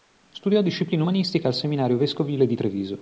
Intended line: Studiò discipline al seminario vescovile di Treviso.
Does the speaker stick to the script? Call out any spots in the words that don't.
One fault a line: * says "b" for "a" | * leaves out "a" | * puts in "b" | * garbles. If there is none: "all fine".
* puts in "umanistiche"